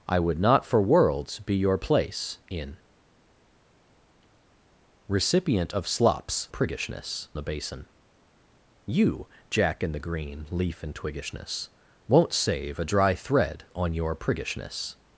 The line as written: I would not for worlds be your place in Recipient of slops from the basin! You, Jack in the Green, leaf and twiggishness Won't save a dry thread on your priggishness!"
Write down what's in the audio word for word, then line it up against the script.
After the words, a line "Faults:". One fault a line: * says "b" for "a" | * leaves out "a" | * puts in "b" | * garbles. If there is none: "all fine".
I would not for worlds be your place in Recipient of slops priggishness the basin! You, Jack in the Green, leaf and twiggishness Won't save a dry thread on your priggishness!"
Faults:
* says "priggishness" for "from"